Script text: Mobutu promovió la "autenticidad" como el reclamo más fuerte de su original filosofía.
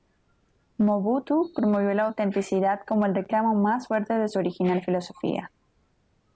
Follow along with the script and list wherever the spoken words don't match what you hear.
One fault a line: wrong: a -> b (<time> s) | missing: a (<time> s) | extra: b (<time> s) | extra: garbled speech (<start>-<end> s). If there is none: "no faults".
no faults